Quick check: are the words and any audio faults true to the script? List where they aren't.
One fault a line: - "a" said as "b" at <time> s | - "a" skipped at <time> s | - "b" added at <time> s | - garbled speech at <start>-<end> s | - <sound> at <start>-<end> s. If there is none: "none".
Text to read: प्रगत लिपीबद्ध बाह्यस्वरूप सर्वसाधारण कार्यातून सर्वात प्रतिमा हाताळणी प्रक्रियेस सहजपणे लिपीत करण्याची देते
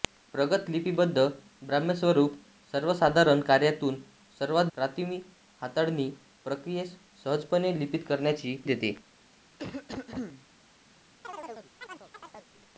- cough at 9.6-10.5 s
- chirp at 11.2-12.5 s